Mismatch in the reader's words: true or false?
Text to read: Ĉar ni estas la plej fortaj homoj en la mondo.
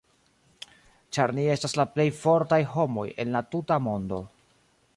true